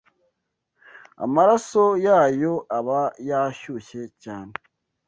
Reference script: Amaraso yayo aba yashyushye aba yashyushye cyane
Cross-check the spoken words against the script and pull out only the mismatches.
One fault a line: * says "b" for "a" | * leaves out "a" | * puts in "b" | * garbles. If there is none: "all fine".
* leaves out "aba yashyushye"